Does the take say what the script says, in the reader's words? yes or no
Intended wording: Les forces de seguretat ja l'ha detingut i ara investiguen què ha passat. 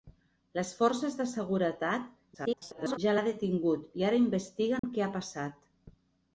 no